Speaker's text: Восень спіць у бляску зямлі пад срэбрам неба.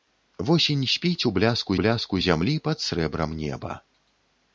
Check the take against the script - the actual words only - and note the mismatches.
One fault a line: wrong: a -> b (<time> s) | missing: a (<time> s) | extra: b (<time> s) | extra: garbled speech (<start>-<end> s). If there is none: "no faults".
extra: бляску (1.8 s)